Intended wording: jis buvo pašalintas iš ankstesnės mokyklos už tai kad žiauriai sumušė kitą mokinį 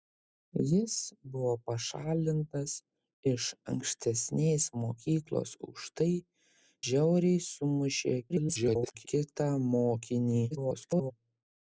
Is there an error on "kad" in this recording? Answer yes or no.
yes